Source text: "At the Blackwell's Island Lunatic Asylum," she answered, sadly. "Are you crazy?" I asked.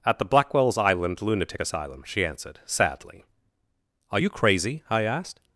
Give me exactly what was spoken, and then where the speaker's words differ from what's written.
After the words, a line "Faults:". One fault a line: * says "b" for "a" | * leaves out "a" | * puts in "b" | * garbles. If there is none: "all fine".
"At the Blackwell's Island Lunatic Asylum," she answered, sadly. "Are you crazy?" I asked.
Faults:
all fine